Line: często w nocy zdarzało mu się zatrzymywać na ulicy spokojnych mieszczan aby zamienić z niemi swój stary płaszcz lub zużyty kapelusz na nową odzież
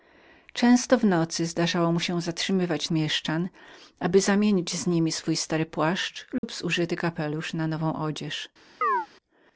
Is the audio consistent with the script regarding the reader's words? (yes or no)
no